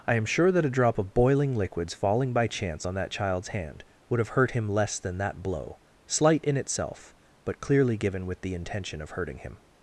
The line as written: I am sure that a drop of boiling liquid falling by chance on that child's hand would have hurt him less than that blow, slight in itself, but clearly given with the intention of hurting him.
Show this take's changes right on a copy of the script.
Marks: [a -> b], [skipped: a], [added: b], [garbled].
I am sure that a drop of boiling [liquid -> liquids] falling by chance on that child's hand would have hurt him less than that blow, slight in itself, but clearly given with the intention of hurting him.